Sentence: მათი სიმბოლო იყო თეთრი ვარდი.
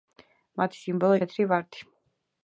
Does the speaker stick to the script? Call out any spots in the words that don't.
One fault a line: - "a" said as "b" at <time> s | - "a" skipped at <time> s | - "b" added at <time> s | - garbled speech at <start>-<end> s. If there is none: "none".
- "იყო" skipped at 1.2 s